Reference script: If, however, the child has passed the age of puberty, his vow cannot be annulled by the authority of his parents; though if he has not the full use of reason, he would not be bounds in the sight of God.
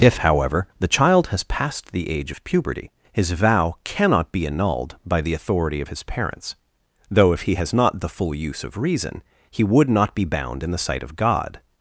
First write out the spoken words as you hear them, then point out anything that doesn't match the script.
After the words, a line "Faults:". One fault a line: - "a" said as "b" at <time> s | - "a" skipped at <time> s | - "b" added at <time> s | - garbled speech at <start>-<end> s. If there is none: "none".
If, however, the child has passed the age of puberty, his vow cannot be annulled by the authority of his parents; though if he has not the full use of reason, he would not be bound in the sight of God.
Faults:
- "bounds" said as "bound" at 10.3 s